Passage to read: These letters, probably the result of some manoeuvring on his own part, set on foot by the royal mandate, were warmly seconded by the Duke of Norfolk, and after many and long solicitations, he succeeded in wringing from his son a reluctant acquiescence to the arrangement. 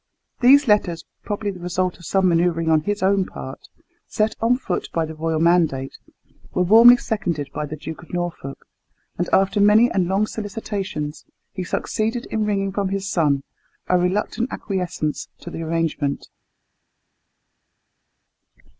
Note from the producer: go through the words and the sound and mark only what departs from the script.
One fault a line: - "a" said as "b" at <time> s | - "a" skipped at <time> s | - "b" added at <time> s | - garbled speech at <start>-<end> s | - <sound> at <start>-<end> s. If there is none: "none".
none